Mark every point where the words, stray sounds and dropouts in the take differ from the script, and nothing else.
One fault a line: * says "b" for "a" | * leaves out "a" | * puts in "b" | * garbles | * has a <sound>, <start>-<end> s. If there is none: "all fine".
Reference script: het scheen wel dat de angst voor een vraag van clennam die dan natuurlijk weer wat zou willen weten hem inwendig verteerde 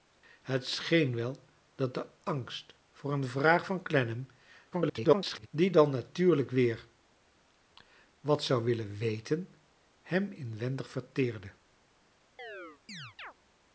* garbles
* has a chirp, 12.4-13.3 s